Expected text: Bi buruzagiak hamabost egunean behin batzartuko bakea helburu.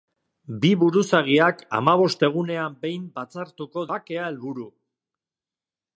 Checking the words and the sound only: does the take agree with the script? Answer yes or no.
yes